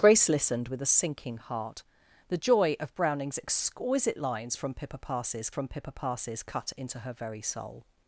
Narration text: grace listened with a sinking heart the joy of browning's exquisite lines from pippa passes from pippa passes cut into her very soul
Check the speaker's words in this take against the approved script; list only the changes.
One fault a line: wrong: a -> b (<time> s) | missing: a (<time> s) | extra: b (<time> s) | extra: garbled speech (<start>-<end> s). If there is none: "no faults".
no faults